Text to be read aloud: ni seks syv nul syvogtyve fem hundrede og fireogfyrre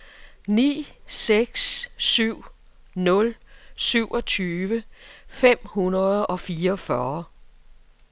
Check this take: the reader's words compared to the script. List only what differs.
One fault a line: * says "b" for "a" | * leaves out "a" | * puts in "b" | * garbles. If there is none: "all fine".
all fine